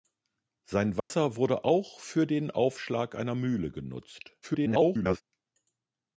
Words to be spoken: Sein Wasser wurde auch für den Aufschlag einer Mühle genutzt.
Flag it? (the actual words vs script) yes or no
yes